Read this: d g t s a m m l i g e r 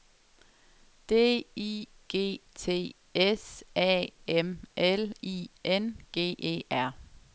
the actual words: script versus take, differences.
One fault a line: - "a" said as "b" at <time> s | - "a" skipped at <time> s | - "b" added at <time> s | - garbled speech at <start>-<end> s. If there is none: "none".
- "i" added at 1.6 s
- "m" skipped at 4.6 s
- "n" added at 5.6 s